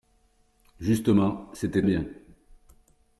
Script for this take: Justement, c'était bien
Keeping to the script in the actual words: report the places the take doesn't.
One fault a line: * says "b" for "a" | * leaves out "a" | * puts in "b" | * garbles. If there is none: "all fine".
all fine